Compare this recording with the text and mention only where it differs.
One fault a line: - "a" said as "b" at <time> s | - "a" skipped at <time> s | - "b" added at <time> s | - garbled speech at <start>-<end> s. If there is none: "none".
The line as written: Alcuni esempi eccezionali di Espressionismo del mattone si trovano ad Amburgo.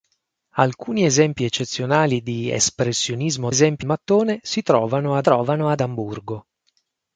- "del" said as "esempi" at 3.5 s
- "trovano ad" added at 5.2 s